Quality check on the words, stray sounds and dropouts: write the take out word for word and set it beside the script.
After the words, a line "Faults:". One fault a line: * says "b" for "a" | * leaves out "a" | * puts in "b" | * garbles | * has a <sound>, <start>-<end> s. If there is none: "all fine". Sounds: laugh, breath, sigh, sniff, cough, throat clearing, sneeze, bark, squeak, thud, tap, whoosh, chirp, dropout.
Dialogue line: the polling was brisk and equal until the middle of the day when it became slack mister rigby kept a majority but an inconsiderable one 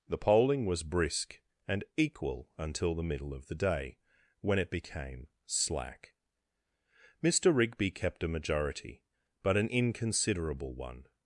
the polling was brisk and equal until the middle of the day when it became slack mister rigby kept a majority but an inconsiderable one
Faults:
all fine